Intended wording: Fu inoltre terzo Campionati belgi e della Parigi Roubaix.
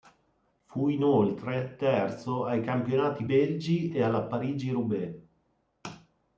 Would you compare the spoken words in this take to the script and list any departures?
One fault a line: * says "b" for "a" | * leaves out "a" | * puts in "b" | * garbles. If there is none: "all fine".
* puts in "ai"
* says "alla" for "della"